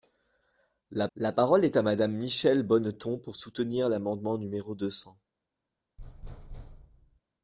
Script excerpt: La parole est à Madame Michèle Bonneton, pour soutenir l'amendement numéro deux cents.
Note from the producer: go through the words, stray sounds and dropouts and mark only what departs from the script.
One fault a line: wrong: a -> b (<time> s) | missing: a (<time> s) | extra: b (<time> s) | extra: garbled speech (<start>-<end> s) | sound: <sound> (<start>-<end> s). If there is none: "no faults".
extra: la (1.1 s)
sound: thud (6.0-7.2 s)